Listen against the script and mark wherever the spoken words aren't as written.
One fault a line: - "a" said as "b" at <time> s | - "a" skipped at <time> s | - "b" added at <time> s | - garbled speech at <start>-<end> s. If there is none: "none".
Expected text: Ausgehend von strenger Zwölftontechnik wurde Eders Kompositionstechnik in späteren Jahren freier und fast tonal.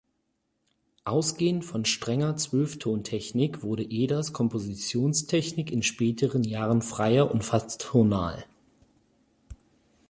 none